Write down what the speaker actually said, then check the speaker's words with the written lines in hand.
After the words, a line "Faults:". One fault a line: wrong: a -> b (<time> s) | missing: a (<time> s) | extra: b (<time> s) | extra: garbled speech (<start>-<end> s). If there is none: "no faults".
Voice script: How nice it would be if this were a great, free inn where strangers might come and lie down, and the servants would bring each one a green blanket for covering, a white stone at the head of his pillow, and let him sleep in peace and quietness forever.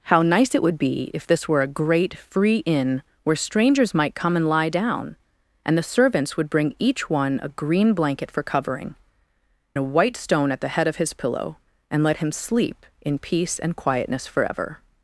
How nice it would be if this were a great, free inn where strangers might come and lie down, and the servants would bring each one a green blanket for covering, a white stone at the head of his pillow, and let him sleep in peace and quietness forever.
Faults:
no faults